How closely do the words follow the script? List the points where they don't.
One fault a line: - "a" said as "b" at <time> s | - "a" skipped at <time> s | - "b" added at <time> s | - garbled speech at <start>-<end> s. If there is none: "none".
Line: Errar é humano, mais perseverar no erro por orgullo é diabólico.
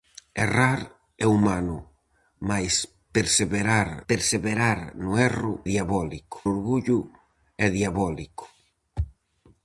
- "perseverar" added at 4.1 s
- "por" said as "diabólico" at 5.7 s